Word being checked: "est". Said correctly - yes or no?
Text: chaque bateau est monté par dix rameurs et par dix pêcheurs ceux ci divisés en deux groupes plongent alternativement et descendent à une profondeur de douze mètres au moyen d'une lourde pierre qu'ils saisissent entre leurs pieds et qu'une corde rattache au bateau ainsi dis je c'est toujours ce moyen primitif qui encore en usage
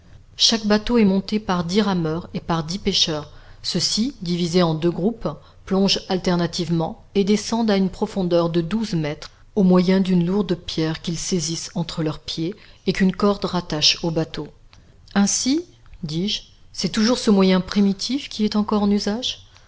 yes